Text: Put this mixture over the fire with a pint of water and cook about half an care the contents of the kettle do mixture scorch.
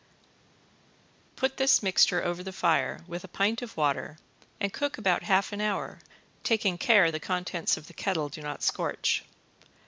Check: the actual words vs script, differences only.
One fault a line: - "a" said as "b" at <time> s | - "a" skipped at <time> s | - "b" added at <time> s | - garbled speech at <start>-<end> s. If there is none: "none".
- "hour taking" added at 5.6 s
- "mixture" said as "not" at 8.4 s